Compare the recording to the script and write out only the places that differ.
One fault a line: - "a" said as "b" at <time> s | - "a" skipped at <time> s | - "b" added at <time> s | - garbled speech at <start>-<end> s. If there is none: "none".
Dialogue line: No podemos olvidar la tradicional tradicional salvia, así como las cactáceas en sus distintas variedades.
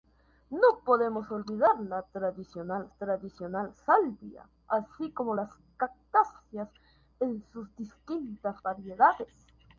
none